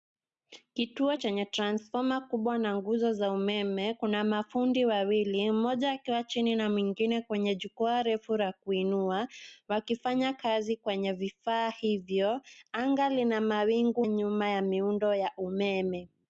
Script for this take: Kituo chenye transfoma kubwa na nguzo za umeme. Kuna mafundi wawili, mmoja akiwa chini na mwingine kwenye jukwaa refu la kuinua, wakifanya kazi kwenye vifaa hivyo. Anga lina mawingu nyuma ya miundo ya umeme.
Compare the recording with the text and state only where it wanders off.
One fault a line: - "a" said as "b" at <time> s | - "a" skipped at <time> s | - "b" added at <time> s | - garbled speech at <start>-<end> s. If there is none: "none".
none